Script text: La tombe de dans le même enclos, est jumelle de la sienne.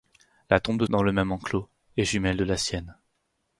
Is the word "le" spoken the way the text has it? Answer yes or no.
yes